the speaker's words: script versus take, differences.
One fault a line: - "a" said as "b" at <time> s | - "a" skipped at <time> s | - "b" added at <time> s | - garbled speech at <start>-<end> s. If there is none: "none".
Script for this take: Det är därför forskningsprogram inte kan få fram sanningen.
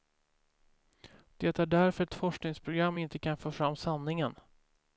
- "ett" added at 2.0 s